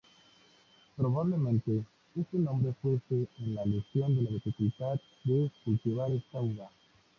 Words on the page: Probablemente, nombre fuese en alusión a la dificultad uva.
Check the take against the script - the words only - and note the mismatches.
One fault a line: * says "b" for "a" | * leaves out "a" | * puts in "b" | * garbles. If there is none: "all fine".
* puts in "este"
* puts in "de cultivar esta"